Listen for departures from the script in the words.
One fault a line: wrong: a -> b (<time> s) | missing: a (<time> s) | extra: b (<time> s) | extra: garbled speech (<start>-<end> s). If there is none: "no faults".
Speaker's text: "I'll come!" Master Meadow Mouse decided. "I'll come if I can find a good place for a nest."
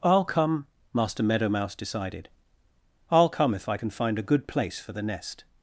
wrong: a -> the (4.9 s)